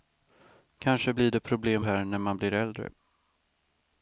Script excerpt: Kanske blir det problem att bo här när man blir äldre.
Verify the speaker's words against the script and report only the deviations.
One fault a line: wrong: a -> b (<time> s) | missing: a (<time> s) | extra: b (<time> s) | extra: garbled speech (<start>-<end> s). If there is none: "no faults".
missing: att bo (1.8 s)